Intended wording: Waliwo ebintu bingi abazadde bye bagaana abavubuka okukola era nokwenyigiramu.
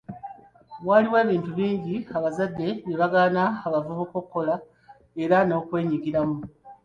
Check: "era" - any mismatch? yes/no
no